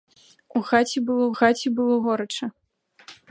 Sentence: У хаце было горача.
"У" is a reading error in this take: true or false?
false